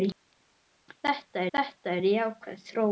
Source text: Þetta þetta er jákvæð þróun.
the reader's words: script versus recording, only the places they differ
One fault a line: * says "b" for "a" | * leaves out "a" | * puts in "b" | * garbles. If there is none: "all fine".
all fine